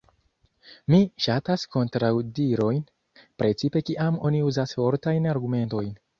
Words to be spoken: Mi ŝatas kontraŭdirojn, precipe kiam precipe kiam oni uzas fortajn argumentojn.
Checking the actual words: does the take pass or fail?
fail